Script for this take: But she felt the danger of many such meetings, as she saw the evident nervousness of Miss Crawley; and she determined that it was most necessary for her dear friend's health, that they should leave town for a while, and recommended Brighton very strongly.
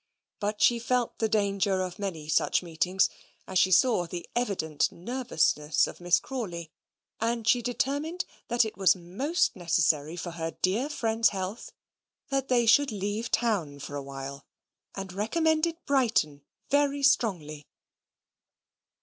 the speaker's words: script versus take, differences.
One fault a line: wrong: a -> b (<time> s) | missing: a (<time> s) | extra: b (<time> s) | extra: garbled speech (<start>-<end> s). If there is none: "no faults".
no faults